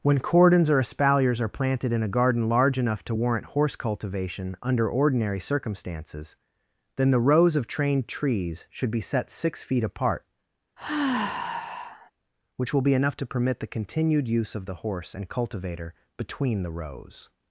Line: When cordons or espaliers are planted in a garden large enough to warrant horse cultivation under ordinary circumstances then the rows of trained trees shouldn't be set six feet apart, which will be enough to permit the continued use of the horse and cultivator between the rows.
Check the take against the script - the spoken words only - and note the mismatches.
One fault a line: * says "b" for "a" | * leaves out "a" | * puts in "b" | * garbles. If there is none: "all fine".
* says "should" for "shouldn't"